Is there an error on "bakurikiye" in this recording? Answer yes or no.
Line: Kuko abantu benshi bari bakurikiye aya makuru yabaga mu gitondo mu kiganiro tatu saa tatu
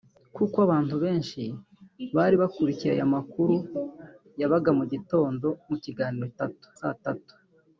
no